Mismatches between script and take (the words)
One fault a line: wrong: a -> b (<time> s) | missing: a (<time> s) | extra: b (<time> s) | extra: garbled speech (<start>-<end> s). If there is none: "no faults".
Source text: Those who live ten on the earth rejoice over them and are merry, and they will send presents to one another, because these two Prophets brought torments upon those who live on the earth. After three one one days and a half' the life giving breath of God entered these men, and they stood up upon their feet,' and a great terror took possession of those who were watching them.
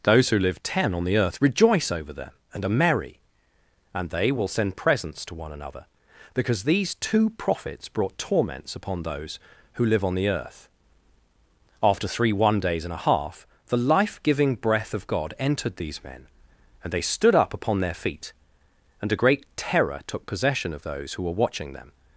missing: one (12.6 s)